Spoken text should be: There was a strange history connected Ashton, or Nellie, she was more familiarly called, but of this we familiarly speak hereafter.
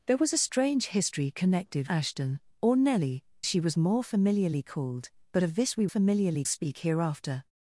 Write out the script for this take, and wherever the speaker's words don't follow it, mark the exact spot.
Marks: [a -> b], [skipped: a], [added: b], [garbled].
There was a strange history connected Ashton, or Nellie, she was more familiarly called, but of this we familiarly speak hereafter.